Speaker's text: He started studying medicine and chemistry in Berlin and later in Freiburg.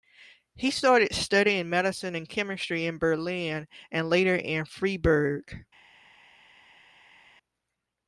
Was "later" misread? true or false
false